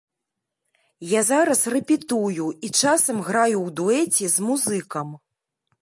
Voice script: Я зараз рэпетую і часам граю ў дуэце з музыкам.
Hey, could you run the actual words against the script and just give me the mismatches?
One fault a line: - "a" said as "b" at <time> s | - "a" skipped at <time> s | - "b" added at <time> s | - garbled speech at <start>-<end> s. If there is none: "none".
none